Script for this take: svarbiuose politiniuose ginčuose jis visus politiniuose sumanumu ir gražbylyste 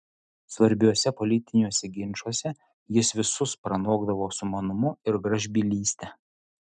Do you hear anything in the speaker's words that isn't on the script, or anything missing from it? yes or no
yes